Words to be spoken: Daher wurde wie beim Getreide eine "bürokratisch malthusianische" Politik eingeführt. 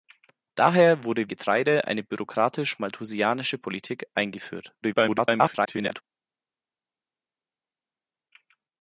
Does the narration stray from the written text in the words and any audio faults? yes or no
yes